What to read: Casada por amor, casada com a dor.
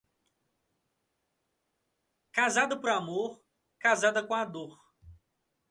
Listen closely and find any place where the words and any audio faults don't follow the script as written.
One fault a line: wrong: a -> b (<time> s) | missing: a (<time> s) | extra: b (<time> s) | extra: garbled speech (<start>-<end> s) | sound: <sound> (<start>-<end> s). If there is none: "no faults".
no faults